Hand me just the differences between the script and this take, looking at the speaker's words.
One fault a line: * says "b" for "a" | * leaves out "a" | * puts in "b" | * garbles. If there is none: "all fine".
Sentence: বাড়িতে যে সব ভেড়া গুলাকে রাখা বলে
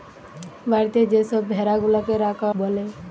all fine